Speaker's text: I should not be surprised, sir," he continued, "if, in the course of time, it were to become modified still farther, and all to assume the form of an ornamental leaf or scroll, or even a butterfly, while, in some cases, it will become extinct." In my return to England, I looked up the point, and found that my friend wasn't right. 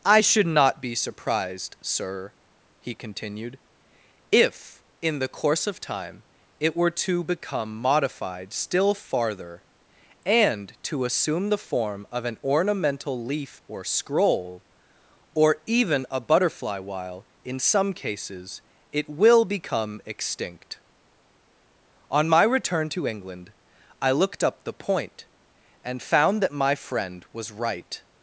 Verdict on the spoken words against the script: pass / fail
fail